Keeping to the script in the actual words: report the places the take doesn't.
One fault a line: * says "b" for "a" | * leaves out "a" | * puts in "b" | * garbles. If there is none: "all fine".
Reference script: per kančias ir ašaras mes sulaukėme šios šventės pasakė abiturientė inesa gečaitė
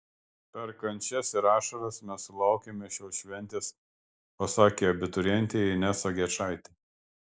all fine